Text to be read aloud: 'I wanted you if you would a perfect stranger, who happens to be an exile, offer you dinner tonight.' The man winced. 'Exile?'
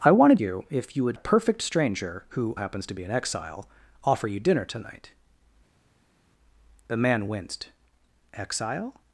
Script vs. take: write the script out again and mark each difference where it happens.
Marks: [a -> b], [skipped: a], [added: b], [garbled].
'I wanted you if you would a perfect stranger, who happens to be an exile, offer you dinner tonight.' The man winced. 'Exile?'